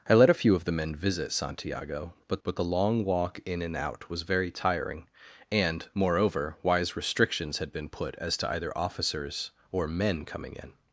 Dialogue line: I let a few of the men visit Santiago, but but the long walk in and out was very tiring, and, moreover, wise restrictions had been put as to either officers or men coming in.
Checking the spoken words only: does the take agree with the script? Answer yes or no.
yes